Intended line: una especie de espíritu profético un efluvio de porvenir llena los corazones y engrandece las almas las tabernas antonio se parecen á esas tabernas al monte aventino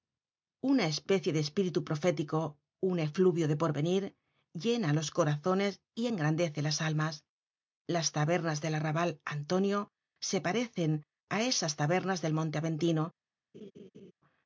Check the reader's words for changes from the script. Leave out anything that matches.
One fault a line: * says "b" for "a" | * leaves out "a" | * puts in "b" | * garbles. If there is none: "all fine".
* puts in "del arrabal"
* says "del" for "al"